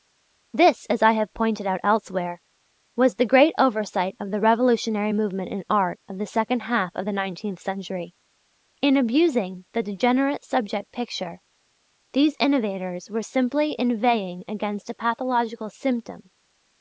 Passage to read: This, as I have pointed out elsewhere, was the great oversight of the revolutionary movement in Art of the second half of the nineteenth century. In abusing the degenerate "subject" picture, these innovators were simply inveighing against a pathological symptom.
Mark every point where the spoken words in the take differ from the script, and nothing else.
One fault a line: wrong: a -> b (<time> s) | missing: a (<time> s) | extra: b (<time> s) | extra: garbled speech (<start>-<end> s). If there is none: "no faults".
no faults